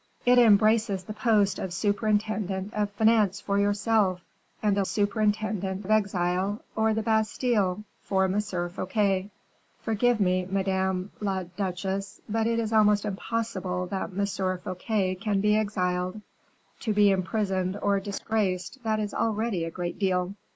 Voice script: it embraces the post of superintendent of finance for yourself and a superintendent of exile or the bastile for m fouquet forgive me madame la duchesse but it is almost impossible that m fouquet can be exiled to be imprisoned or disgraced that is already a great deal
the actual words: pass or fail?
pass